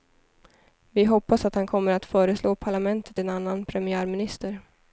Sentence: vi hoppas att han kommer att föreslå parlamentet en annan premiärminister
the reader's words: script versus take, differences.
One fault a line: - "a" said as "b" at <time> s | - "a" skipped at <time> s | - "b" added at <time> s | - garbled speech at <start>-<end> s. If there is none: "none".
none